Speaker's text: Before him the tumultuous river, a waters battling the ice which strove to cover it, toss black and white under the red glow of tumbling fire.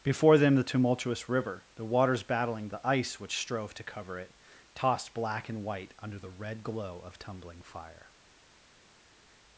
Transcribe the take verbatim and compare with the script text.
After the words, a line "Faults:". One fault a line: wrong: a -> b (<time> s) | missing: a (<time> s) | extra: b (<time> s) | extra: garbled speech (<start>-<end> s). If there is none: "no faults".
Before them the tumultuous river, the waters battling the ice which strove to cover it, tossed black and white under the red glow of tumbling fire.
Faults:
wrong: him -> them (0.4 s)
wrong: a -> the (1.8 s)
wrong: toss -> tossed (4.7 s)